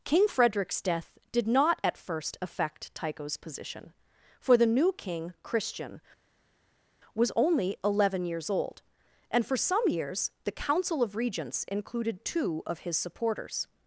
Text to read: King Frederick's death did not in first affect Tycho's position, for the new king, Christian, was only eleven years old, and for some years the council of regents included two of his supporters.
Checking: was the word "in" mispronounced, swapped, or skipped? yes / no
yes